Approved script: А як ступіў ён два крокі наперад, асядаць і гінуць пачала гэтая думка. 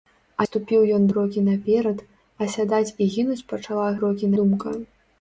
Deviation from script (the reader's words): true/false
true